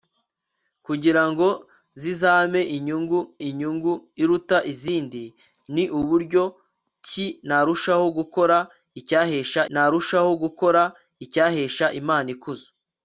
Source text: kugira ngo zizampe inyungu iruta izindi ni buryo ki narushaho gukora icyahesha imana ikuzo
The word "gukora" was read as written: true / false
true